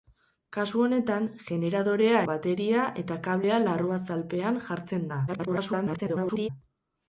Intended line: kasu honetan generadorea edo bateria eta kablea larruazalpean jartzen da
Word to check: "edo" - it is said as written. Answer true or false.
false